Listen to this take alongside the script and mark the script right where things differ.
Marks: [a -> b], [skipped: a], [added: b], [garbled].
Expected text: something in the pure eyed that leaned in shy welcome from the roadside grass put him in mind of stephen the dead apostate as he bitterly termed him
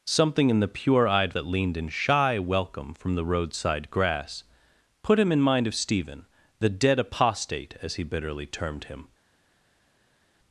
something in the pure eyed that leaned in shy welcome from the roadside grass put him in mind of stephen the dead apostate as he bitterly termed him